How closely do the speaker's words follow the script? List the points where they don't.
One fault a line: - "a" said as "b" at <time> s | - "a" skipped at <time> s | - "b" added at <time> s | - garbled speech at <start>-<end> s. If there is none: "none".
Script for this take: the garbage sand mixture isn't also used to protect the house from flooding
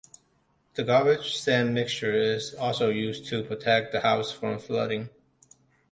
- "isn't" said as "is" at 2.1 s